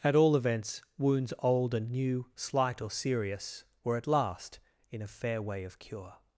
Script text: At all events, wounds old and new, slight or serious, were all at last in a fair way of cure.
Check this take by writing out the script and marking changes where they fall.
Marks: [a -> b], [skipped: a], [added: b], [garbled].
At all events, wounds old and new, slight or serious, were [skipped: all] at last in a fair way of cure.